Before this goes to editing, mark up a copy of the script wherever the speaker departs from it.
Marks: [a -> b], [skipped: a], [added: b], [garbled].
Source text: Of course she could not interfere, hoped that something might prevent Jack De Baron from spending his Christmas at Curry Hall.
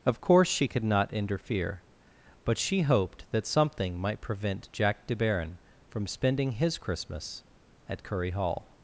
Of course she could not interfere, [added: but she] hoped that something might prevent Jack De Baron from spending his Christmas at Curry Hall.